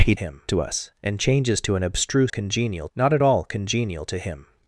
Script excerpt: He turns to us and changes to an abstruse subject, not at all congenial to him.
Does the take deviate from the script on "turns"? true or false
true